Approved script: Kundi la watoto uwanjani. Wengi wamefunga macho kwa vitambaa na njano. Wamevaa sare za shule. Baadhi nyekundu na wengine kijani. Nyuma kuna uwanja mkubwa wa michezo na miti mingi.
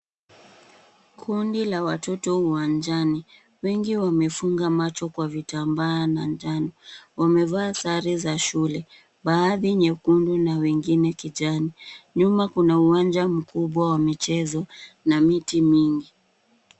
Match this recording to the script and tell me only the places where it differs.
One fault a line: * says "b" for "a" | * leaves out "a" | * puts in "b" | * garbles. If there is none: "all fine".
all fine